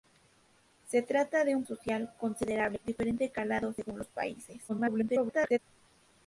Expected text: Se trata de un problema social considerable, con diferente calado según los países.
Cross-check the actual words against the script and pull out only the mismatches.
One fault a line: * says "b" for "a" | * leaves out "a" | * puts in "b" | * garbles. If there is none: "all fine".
* leaves out "problema"
* leaves out "con"
* garbles